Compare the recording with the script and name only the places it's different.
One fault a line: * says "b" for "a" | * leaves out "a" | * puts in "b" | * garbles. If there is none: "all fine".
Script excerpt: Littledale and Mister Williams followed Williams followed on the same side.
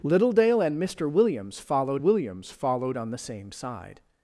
all fine